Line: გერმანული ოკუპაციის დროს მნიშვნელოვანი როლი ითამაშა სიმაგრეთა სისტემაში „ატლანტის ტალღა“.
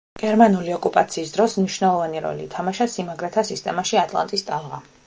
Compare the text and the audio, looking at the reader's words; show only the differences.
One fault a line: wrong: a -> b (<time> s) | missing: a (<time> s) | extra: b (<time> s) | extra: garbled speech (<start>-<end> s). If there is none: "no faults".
no faults